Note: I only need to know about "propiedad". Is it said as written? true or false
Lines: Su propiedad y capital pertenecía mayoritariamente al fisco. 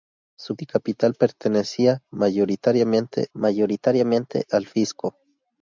false